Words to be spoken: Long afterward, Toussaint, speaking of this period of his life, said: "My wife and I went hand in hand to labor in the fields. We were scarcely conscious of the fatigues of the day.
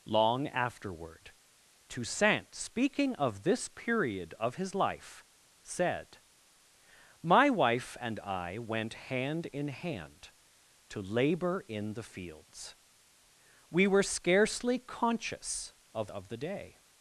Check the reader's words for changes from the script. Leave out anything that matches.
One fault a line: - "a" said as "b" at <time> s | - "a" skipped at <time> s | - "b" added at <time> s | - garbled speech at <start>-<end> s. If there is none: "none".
- "the fatigues" skipped at 16.1 s